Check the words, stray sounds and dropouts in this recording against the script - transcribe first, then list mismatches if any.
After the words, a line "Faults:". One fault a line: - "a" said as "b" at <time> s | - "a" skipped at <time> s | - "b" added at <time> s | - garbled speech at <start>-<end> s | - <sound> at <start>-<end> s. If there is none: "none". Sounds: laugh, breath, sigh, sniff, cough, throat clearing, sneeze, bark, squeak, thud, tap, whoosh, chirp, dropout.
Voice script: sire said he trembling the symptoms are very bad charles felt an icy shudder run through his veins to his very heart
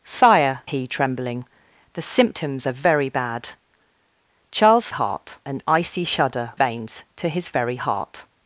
sire he trembling the symptoms are very bad charles heart an icy shudder veins to his very heart
Faults:
- "said" skipped at 0.6 s
- "felt" said as "heart" at 4.9 s
- "run through his" skipped at 6.5 s